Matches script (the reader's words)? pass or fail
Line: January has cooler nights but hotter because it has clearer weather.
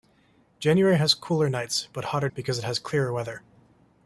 pass